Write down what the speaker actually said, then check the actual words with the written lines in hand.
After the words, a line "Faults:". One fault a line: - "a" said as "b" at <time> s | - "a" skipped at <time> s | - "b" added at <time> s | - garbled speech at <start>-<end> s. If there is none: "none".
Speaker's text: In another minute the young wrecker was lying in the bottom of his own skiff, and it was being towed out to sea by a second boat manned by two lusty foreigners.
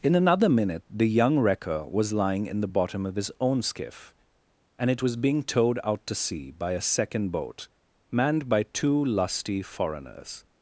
In another minute the young wrecker was lying in the bottom of his own skiff, and it was being towed out to sea by a second boat manned by two lusty foreigners.
Faults:
none